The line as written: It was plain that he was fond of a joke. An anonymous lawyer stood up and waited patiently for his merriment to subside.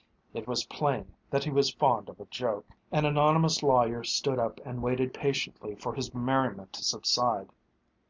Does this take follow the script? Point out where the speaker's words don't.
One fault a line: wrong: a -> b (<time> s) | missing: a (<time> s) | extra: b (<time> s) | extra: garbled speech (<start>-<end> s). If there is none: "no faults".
no faults